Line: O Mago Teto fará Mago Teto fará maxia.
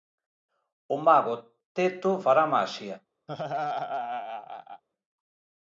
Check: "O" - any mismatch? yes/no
no